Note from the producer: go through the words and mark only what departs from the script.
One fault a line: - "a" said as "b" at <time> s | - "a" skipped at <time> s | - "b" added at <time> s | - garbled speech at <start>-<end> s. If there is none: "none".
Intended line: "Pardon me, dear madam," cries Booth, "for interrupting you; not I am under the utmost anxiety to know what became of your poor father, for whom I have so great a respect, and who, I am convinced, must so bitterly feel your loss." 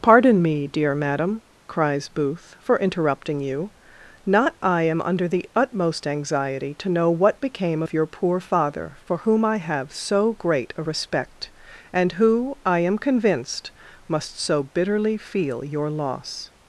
none